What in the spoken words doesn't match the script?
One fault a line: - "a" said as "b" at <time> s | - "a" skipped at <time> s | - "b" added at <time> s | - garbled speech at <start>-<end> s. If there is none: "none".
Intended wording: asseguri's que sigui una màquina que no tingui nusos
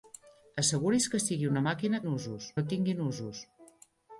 - "que" said as "nusos" at 2.1 s